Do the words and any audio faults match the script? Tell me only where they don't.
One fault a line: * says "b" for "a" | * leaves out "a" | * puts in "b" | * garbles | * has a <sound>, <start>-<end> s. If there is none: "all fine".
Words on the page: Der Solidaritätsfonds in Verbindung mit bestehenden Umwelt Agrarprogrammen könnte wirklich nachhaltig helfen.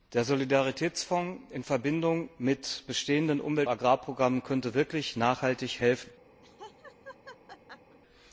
* has a laugh, 6.4-8.0 s